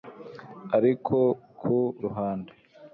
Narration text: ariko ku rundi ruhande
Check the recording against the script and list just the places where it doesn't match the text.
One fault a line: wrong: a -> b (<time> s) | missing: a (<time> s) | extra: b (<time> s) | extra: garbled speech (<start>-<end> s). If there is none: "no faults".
missing: rundi (1.8 s)